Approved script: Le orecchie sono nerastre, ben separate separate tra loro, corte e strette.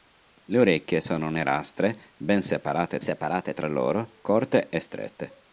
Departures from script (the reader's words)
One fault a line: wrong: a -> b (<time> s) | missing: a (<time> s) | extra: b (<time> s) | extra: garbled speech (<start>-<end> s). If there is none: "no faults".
no faults